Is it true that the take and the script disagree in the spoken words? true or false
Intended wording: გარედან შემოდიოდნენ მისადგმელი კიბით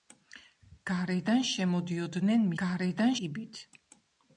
true